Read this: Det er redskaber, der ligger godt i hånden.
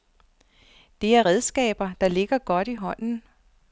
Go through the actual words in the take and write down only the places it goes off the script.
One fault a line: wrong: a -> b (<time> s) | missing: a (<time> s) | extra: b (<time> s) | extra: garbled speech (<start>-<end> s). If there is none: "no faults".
no faults